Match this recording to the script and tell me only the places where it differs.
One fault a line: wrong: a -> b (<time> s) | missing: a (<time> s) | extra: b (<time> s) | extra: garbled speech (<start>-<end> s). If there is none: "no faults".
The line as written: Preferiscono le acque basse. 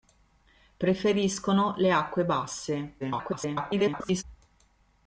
extra: garbled speech (3.0-4.2 s)